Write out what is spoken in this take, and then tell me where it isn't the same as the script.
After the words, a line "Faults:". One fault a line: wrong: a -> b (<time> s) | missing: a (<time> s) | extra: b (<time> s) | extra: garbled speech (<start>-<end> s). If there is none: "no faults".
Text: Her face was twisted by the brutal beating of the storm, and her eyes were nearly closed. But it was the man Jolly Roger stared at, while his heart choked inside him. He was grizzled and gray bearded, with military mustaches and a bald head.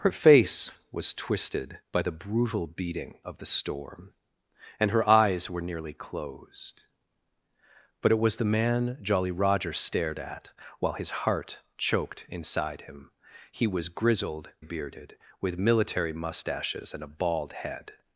Her face was twisted by the brutal beating of the storm, and her eyes were nearly closed. But it was the man Jolly Roger stared at, while his heart choked inside him. He was grizzled bearded, with military mustaches and a bald head.
Faults:
missing: and gray (14.5 s)